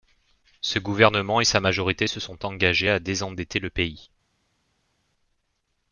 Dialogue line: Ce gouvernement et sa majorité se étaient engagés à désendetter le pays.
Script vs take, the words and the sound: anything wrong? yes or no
yes